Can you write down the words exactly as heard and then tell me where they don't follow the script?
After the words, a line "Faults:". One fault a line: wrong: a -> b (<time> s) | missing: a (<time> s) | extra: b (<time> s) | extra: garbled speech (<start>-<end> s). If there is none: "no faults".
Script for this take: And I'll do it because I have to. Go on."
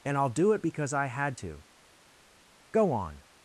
And I'll do it because I had to. Go on."
Faults:
wrong: have -> had (1.1 s)